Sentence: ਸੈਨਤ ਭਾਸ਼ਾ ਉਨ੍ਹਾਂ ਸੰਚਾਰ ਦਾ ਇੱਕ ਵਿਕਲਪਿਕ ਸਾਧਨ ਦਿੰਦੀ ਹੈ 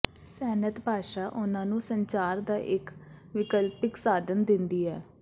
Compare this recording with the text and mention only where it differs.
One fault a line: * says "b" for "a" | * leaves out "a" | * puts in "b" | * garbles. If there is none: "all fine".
* puts in "ਨੂੰ"